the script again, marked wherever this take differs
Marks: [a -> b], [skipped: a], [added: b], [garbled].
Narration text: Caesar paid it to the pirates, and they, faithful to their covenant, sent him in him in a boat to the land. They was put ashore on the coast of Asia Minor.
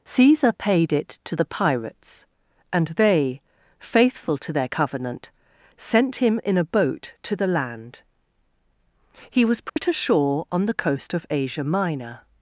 Caesar paid it to the pirates, and they, faithful to their covenant, sent him in [skipped: him in] a boat to the land. [They -> He] was put ashore on the coast of Asia Minor.